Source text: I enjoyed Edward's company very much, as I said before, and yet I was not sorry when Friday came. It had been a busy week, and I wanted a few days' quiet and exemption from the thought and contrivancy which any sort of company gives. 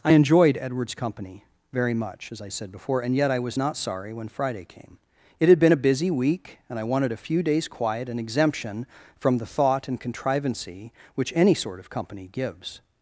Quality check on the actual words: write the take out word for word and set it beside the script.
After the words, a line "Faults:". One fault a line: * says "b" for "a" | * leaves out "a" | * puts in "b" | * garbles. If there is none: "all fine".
I enjoyed Edward's company very much, as I said before, and yet I was not sorry when Friday came. It had been a busy week, and I wanted a few days' quiet and exemption from the thought and contrivancy which any sort of company gives.
Faults:
all fine